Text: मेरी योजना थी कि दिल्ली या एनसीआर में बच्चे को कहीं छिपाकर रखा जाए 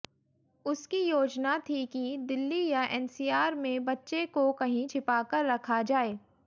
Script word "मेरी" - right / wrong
wrong